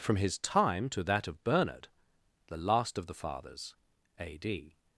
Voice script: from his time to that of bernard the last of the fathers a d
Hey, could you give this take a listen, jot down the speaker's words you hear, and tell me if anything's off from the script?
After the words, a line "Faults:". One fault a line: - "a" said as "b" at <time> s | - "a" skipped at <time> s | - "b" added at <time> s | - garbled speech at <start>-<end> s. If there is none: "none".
from his time to that of bernard the last of the fathers a d
Faults:
none